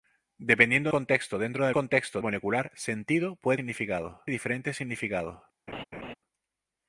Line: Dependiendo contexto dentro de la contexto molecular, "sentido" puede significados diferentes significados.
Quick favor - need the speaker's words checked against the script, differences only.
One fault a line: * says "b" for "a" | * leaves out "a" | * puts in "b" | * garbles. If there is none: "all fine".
all fine